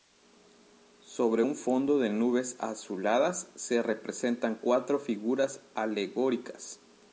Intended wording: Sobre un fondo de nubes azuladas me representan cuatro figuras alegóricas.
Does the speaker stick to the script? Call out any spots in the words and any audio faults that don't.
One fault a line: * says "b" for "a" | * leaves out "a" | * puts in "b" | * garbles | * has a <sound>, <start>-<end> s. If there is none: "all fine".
* says "se" for "me"